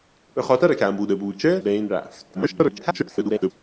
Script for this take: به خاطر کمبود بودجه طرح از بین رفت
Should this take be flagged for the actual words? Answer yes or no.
yes